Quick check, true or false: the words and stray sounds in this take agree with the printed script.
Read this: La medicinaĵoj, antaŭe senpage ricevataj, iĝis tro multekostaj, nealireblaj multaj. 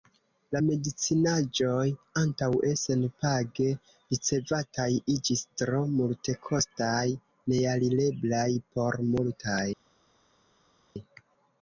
false